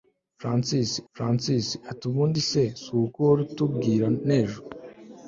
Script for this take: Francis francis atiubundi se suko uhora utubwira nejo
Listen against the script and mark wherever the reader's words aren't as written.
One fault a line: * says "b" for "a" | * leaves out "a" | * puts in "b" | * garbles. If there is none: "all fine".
all fine